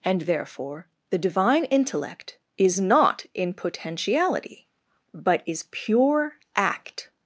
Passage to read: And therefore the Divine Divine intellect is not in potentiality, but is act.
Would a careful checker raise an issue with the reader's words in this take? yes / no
yes